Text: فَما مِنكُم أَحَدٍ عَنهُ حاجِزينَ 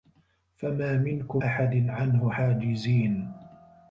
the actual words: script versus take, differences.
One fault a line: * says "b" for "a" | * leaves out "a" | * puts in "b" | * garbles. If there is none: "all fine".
all fine